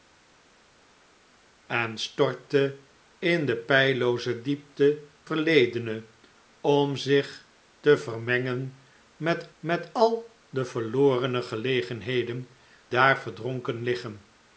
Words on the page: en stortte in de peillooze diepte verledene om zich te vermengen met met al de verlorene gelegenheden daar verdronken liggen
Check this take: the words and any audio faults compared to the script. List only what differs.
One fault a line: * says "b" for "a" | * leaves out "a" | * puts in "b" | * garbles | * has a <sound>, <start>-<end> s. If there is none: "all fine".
all fine